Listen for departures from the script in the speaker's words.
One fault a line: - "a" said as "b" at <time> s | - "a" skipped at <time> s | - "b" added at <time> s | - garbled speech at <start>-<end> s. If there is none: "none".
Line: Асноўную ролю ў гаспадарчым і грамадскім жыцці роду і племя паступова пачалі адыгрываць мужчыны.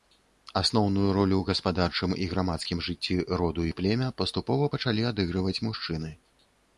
none